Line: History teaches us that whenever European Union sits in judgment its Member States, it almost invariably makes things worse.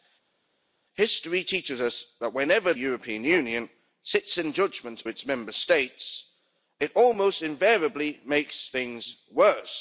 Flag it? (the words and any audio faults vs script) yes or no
no